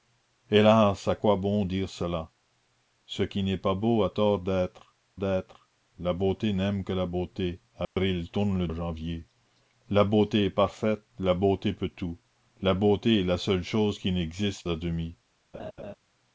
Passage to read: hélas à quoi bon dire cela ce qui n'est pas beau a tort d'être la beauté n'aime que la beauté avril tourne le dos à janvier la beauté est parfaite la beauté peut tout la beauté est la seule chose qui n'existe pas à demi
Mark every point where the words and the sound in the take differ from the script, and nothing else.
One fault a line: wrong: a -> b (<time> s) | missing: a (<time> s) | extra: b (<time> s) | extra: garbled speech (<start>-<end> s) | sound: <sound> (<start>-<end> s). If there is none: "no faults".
extra: d'être (5.1 s)
sound: dropout (7.8-8.0 s)
missing: dos (8.7 s)
missing: pas (14.7 s)
sound: laugh (15.5-15.9 s)